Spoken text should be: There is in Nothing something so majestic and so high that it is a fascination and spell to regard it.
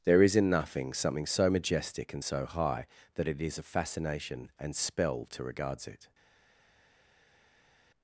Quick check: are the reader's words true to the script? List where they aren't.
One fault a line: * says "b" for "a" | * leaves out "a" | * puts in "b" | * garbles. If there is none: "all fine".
* says "regards" for "regard"